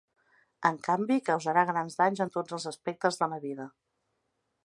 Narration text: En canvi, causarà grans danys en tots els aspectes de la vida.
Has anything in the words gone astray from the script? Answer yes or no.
no